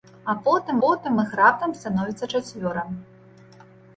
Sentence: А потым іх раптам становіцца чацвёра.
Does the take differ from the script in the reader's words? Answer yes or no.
yes